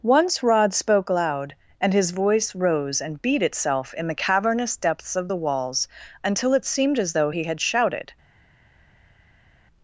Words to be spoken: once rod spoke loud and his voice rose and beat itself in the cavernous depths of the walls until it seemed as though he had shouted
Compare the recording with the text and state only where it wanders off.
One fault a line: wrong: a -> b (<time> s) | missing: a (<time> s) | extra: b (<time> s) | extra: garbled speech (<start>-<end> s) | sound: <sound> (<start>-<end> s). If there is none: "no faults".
no faults